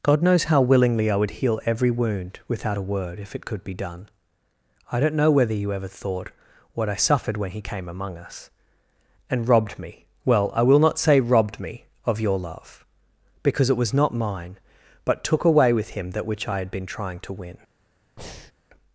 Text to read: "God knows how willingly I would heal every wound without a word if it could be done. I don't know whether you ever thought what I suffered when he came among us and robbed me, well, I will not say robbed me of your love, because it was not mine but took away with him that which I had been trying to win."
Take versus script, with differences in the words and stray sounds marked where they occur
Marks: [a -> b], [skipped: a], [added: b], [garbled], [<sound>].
"God knows how willingly I would heal every wound without a word if it could be done. I don't know whether you ever thought what I suffered when he came among us and robbed me, well, I will not say robbed me of your love, because it was not mine but took away with him that which I had been trying to win." [breath]